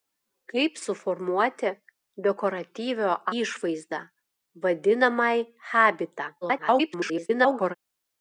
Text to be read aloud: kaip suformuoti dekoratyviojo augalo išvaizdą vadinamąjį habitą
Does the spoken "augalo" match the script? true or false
false